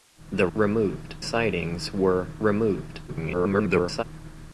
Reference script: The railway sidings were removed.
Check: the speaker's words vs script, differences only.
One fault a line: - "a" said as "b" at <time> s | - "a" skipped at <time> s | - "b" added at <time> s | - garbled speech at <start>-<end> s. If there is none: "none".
- "railway" said as "removed" at 0.5 s
- garbled speech at 3.1-4.0 s